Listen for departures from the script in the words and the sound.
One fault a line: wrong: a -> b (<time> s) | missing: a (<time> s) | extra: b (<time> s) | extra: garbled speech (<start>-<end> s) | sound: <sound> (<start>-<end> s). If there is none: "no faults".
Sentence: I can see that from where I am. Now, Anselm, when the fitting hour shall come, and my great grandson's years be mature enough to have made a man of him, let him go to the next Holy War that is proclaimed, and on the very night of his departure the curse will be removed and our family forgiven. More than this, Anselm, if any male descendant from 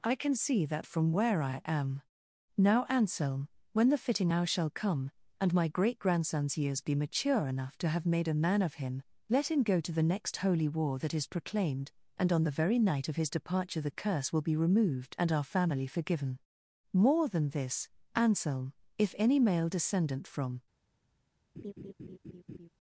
sound: laugh (21.6-22.7 s)